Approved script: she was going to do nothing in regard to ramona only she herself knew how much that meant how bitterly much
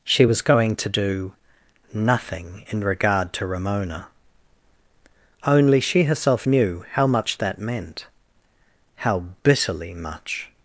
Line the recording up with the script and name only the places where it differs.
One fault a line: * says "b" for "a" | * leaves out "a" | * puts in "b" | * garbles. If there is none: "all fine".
all fine